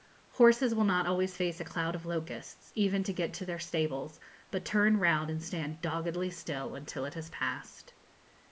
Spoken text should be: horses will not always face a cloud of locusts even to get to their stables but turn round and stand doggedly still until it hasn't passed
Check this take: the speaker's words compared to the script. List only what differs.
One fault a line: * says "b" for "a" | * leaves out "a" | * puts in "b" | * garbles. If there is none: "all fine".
* says "has" for "hasn't"